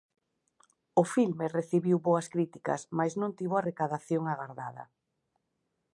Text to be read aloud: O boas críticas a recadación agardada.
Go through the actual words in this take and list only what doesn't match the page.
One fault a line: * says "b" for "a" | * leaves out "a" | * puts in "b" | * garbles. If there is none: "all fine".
* puts in "filme recibiu"
* puts in "mais non tivo"